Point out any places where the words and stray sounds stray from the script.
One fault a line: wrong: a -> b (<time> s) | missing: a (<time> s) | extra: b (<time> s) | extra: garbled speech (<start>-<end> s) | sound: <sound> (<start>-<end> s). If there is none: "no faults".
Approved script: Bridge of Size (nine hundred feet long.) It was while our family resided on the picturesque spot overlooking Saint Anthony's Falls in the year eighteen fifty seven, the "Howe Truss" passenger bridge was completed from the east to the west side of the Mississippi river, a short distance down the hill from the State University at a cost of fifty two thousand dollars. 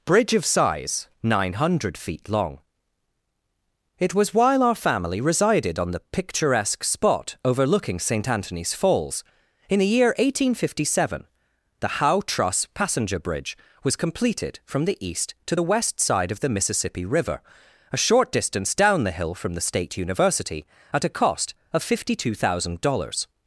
no faults